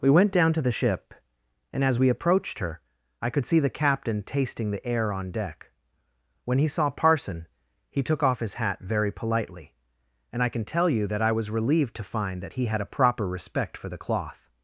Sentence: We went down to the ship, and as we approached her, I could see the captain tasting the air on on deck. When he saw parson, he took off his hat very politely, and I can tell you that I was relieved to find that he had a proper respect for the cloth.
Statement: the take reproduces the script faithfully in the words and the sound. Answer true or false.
false